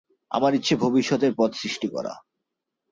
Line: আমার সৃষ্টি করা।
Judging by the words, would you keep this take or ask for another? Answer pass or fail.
fail